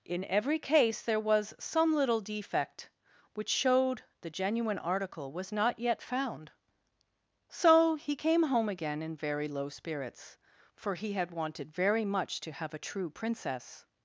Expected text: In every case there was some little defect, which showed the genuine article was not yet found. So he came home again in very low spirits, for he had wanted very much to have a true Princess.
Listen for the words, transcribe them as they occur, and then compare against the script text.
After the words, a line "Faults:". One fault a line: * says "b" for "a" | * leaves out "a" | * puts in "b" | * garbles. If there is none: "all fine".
In every case there was some little defect, which showed the genuine article was not yet found. So he came home again in very low spirits, for he had wanted very much to have a true Princess.
Faults:
all fine